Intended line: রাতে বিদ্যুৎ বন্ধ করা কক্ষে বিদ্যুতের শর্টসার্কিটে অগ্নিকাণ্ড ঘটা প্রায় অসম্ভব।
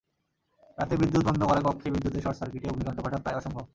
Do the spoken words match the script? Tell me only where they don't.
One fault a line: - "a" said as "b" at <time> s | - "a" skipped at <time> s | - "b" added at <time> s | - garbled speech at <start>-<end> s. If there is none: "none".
none